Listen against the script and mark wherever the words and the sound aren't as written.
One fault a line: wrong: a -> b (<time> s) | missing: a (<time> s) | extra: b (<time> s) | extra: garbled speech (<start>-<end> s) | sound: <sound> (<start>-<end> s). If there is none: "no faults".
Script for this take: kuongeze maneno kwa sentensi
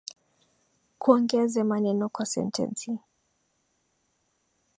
no faults